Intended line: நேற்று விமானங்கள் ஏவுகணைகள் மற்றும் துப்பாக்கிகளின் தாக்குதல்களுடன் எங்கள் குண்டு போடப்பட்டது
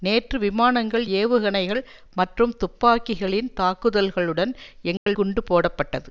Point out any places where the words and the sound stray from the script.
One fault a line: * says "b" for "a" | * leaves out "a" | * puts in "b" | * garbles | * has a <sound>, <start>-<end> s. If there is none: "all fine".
* has a dropout, 5.0-5.1 s